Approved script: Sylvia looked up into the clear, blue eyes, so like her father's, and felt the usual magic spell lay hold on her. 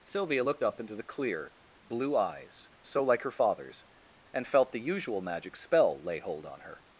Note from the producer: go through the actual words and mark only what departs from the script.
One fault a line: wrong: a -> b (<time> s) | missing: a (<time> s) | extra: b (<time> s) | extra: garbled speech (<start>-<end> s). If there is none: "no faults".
no faults